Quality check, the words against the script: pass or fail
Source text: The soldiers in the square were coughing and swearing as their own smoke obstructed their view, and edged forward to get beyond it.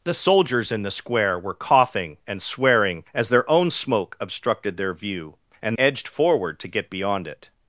pass